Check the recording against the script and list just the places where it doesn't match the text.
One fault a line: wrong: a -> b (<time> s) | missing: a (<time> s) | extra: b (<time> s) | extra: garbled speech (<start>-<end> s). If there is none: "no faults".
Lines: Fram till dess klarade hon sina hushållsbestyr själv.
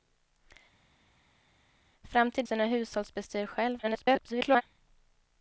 missing: dess klarade hon (2.4 s)
extra: garbled speech (3.8-4.6 s)